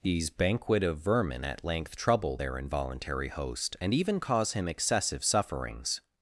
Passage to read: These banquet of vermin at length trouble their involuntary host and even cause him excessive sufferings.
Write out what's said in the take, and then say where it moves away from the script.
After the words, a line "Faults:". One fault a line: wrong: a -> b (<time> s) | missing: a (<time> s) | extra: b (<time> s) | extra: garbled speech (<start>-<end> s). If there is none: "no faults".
These banquet of vermin at length trouble their involuntary host and even cause him excessive sufferings.
Faults:
no faults